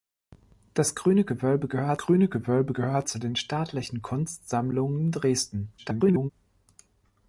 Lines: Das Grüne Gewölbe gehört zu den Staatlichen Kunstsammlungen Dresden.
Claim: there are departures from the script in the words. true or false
true